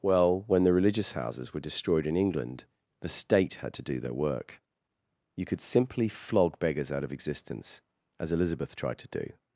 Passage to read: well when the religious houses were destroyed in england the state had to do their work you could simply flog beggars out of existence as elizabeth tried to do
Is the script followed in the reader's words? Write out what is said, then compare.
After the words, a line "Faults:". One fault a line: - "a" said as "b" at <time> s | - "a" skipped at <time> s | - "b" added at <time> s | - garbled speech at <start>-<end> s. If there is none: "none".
well when the religious houses were destroyed in england the state had to do their work you could simply flog beggars out of existence as elizabeth tried to do
Faults:
none